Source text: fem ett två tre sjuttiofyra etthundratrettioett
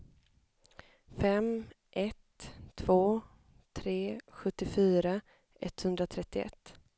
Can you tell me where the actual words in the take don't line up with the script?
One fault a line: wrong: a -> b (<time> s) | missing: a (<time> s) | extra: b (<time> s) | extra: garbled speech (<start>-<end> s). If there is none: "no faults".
no faults